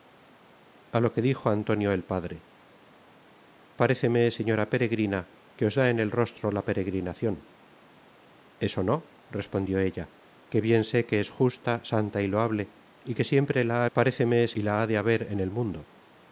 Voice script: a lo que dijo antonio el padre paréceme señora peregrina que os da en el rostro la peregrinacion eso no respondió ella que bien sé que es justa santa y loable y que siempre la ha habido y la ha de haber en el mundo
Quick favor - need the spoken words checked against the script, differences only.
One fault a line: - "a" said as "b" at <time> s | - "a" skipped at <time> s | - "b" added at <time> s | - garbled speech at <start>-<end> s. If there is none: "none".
- "habido" said as "paréceme" at 14.0 s